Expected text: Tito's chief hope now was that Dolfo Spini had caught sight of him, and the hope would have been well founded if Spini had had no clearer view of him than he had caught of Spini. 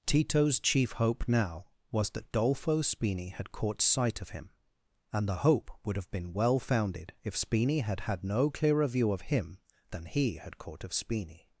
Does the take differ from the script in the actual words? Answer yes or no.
no